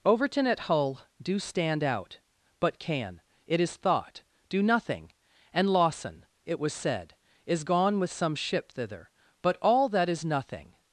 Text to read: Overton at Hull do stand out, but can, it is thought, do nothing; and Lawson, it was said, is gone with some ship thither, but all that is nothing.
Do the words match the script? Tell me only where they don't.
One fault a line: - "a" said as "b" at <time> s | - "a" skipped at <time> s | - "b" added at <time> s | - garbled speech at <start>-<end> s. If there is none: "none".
none